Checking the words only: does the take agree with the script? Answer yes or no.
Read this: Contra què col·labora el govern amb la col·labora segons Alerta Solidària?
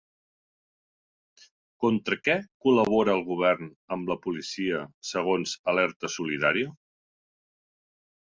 no